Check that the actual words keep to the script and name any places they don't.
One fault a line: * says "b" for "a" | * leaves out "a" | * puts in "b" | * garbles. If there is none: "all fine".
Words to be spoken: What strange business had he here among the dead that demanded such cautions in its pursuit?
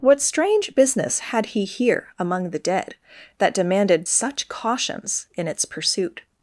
all fine